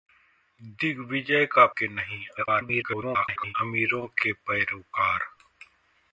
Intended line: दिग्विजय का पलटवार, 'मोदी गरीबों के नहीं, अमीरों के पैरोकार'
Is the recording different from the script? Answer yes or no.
yes